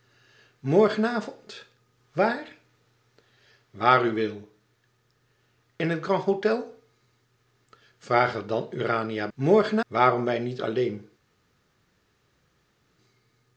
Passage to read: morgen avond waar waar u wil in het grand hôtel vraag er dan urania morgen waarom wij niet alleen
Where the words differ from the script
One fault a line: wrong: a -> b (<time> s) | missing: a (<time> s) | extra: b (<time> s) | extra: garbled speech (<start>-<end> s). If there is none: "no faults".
no faults